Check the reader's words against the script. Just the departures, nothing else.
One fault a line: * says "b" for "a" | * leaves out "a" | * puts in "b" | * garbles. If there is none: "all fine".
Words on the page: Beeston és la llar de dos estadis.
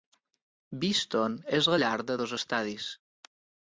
all fine